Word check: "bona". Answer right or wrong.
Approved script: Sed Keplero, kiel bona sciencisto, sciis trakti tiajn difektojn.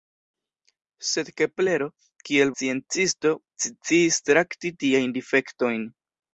wrong